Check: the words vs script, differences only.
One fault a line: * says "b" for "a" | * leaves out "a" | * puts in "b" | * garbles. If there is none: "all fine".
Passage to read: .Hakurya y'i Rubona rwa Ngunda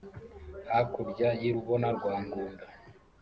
all fine